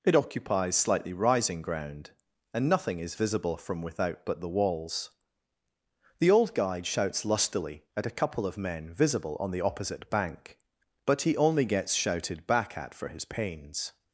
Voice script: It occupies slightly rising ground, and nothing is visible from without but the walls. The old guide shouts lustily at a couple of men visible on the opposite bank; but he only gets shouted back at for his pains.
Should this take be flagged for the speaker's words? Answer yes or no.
no